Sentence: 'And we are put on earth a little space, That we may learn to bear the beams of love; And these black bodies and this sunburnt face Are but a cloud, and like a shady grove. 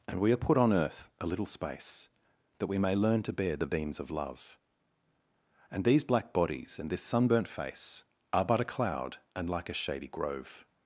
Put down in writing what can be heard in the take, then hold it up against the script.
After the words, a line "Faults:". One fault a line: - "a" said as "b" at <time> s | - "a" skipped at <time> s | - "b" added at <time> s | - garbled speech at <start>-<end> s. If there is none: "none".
'And we are put on earth a little space, That we may learn to bear the beams of love; And these black bodies and this sunburnt face Are but a cloud, and like a shady grove.
Faults:
none